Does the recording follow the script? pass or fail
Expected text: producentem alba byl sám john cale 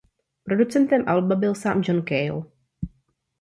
pass